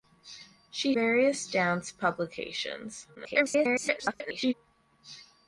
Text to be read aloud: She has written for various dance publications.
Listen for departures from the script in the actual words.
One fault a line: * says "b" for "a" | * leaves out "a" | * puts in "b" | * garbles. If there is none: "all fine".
* leaves out "has written for"
* garbles